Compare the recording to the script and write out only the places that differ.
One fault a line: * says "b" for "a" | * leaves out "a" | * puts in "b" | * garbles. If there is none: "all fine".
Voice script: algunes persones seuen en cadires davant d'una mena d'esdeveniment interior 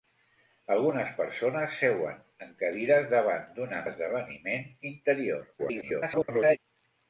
* leaves out "mena"
* garbles